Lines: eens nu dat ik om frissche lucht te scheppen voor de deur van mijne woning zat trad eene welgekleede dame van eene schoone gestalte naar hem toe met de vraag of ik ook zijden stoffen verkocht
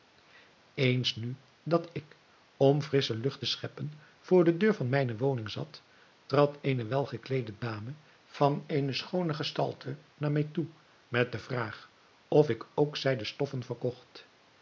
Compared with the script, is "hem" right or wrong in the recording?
wrong